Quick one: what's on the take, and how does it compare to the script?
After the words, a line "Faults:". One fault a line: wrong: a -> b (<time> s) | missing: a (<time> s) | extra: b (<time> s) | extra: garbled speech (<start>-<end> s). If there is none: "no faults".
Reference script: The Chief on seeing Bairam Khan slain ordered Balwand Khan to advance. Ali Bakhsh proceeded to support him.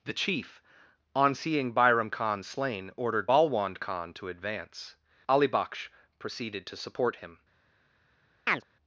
The Chief on seeing Bairam Khan slain ordered Balwand Khan to advance. Ali Bakhsh proceeded to support him.
Faults:
no faults